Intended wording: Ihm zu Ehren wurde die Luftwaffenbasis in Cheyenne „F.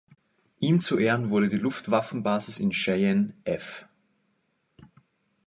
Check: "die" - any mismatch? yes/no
no